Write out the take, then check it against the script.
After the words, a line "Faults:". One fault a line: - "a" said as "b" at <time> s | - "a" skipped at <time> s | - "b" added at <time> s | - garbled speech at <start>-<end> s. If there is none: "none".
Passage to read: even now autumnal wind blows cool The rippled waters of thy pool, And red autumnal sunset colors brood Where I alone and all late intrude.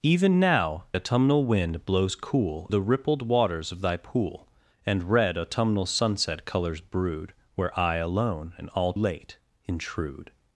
even now autumnal wind blows cool The rippled waters of thy pool, And red autumnal sunset colors brood Where I alone and all late intrude.
Faults:
none